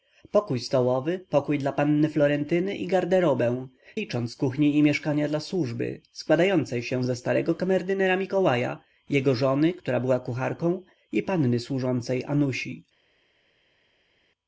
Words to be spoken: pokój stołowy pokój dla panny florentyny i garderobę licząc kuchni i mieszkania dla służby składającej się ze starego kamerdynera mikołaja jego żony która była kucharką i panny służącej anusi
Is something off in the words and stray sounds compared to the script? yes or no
no